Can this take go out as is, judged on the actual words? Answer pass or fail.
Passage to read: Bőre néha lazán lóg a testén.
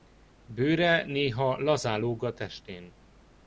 pass